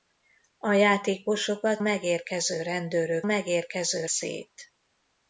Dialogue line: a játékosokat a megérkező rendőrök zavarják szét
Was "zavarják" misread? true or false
true